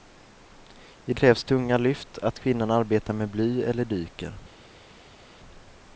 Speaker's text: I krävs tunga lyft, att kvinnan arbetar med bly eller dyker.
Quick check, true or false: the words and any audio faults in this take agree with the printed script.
true